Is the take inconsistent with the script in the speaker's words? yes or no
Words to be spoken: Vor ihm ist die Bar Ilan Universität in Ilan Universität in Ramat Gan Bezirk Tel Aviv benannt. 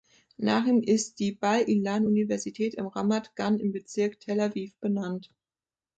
yes